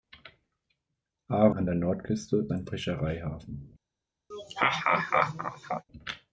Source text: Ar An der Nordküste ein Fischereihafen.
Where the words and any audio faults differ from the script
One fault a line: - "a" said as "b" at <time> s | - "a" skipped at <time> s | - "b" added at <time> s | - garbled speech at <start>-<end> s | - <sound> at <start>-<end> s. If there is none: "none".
- laugh at 4.3-5.8 s